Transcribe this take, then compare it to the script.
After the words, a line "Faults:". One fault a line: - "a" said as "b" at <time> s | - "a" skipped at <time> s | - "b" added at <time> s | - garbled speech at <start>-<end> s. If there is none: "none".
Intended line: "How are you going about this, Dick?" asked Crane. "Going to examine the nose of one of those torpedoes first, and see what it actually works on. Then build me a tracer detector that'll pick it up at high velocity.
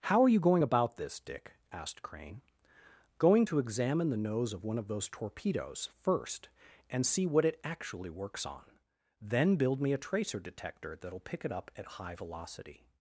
"How are you going about this, Dick?" asked Crane. "Going to examine the nose of one of those torpedoes first, and see what it actually works on. Then build me a tracer detector that'll pick it up at high velocity.
Faults:
none